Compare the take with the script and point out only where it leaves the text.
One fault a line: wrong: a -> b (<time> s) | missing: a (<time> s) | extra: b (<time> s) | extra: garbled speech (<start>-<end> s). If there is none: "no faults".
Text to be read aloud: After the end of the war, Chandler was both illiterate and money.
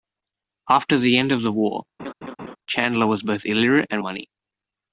no faults